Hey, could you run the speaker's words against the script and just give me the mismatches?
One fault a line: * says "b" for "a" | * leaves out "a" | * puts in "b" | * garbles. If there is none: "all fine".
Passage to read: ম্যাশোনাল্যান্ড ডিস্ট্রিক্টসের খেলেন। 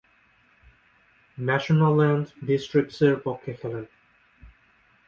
* puts in "পক্ষে"